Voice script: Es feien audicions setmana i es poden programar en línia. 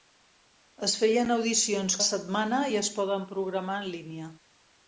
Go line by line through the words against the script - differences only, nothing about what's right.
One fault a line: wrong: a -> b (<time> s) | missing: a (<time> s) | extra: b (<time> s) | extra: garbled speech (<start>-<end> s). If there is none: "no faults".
no faults